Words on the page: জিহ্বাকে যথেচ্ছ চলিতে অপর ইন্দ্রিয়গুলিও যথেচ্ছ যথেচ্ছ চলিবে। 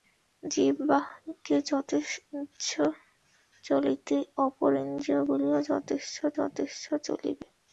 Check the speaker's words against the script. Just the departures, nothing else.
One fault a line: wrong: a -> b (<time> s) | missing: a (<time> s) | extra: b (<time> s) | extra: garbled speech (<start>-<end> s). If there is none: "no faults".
no faults